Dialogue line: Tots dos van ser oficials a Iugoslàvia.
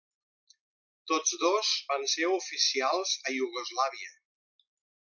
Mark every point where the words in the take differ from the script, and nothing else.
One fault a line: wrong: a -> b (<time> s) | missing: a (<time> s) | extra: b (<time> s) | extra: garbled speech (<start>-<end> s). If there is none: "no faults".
no faults